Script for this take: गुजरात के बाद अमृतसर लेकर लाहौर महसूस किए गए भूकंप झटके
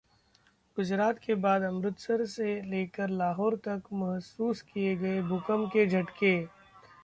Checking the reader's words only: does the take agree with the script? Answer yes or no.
no